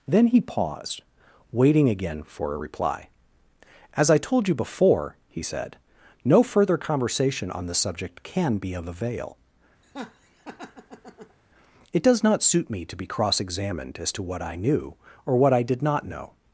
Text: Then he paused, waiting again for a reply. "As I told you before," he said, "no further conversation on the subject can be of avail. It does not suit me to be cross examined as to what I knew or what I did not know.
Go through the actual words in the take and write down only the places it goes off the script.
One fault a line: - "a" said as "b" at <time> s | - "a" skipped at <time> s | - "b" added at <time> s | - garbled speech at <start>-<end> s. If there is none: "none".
none